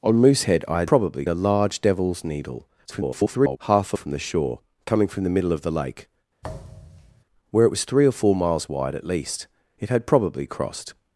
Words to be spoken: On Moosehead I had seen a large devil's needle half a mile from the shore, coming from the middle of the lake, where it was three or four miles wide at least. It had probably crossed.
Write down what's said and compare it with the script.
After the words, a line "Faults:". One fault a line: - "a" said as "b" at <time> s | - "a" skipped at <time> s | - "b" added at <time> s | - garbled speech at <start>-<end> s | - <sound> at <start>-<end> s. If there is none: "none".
On Moosehead I had probably a large devil's needle [garbled] half a from the shore, coming from the middle of the lake, where it was three or four miles wide at least. It had probably crossed.
Faults:
- "seen" said as "probably" at 0.9 s
- garbled speech at 2.8-3.6 s
- "mile" skipped at 4.0 s
- thud at 6.4-7.2 s